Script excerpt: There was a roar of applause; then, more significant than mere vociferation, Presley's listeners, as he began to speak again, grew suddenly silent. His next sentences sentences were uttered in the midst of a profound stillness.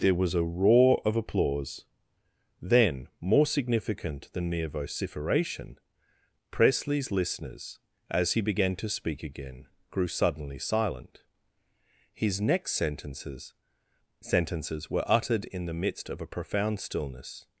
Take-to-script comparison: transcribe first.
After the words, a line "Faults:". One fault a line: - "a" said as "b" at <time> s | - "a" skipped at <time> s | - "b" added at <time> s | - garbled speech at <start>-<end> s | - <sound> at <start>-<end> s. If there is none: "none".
There was a roar of applause; then, more significant than mere vociferation, Presley's listeners, as he began to speak again, grew suddenly silent. His next sentences sentences were uttered in the midst of a profound stillness.
Faults:
none